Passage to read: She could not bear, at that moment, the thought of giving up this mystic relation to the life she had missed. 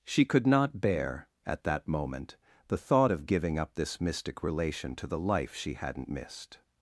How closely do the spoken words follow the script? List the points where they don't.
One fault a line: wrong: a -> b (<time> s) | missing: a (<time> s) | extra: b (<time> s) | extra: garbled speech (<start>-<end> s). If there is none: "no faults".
wrong: had -> hadn't (5.7 s)